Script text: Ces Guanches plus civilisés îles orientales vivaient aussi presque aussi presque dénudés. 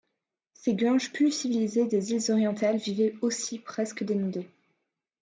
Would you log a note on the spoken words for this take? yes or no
yes